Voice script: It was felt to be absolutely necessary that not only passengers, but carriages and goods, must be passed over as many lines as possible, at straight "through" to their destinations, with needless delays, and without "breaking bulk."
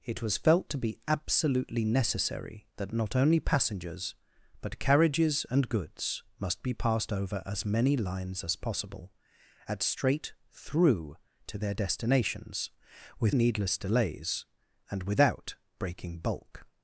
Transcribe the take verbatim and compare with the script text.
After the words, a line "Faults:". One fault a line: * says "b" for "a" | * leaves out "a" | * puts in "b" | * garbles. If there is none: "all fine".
It was felt to be absolutely necessary that not only passengers, but carriages and goods, must be passed over as many lines as possible, at straight "through" to their destinations, with needless delays, and without "breaking bulk."
Faults:
all fine